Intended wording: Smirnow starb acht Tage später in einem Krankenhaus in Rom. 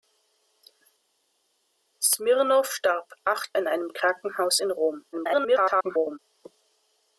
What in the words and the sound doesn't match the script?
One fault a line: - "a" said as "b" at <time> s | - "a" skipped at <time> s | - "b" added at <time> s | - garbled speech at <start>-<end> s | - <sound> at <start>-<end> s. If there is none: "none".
- "Tage später" skipped at 3.5 s
- garbled speech at 5.1-6.2 s